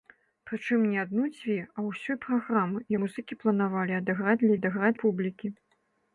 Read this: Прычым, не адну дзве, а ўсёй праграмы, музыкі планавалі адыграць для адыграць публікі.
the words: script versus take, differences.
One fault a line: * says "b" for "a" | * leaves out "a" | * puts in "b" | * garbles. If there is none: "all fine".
all fine